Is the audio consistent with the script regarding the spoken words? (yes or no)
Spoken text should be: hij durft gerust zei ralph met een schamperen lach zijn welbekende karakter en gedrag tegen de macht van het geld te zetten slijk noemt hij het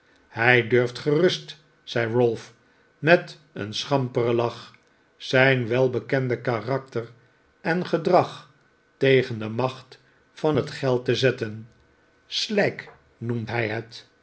yes